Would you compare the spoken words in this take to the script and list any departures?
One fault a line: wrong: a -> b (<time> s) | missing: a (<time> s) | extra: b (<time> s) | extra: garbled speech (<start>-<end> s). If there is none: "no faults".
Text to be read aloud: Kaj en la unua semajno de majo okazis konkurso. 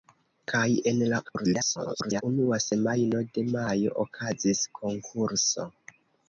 extra: garbled speech (1.2-2.2 s)